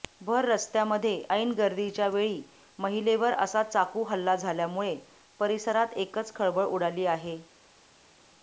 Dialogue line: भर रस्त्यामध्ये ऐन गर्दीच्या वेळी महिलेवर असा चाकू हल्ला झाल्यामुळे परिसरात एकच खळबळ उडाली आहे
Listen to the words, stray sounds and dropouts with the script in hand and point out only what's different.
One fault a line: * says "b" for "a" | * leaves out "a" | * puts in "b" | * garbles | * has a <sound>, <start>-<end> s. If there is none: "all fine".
all fine